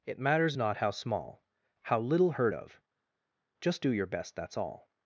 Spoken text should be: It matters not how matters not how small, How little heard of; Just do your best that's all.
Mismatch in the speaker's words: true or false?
true